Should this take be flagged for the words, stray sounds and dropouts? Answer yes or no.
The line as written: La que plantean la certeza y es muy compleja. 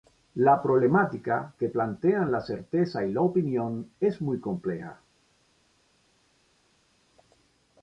yes